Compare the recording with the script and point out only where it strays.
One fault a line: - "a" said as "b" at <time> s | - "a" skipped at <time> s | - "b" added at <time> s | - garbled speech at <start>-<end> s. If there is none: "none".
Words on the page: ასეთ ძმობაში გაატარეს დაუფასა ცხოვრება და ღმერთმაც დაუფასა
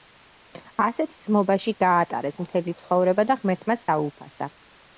- "დაუფასა" said as "მთელი" at 2.5 s